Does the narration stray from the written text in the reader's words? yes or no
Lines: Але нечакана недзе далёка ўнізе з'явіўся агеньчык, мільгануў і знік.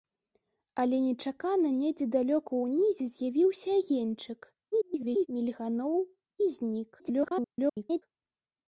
yes